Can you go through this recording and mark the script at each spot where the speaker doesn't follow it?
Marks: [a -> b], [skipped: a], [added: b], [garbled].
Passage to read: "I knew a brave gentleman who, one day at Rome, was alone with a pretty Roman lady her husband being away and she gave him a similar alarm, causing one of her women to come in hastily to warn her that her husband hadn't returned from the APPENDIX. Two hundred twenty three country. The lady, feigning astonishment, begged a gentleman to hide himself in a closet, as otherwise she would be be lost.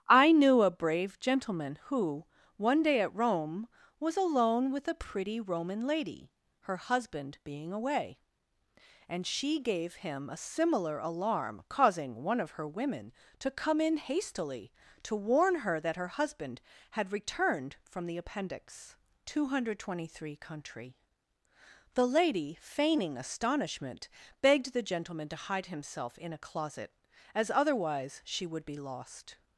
"I knew a brave gentleman who, one day at Rome, was alone with a pretty Roman lady her husband being away and she gave him a similar alarm, causing one of her women to come in hastily to warn her that her husband [hadn't -> had] returned from the APPENDIX. Two hundred twenty three country. The lady, feigning astonishment, begged [a -> the] gentleman to hide himself in a closet, as otherwise she would be [skipped: be] lost.